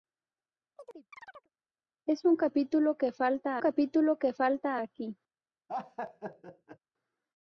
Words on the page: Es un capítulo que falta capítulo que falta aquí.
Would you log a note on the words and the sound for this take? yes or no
yes